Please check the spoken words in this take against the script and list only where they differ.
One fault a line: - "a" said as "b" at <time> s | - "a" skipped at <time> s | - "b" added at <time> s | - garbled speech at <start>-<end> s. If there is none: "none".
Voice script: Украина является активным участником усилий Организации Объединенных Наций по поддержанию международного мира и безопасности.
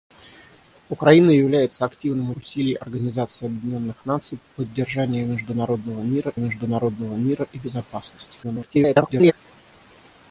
- "участником" skipped at 2.3 s
- "международного мира" added at 6.4 s
- garbled speech at 8.4-9.3 s